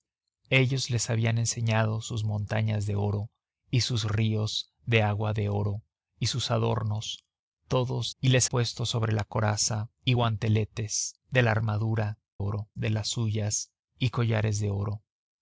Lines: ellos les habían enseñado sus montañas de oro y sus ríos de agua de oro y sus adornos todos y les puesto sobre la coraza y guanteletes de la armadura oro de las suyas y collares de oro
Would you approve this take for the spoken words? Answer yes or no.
yes